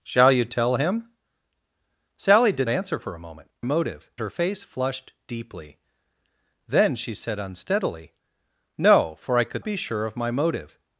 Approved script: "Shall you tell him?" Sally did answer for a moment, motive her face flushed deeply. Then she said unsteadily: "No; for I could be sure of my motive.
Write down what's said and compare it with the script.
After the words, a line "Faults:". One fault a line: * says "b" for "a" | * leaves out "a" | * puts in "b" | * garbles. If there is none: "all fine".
"Shall you tell him?" Sally did answer for a moment, motive her face flushed deeply. Then she said unsteadily: "No; for I could be sure of my motive.
Faults:
all fine